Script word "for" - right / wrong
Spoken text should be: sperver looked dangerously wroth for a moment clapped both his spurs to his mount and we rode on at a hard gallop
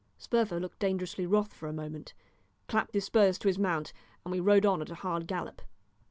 right